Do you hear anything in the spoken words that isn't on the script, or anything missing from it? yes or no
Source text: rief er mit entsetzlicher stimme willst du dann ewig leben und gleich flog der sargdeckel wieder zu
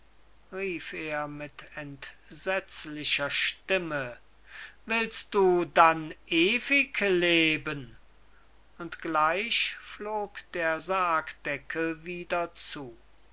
no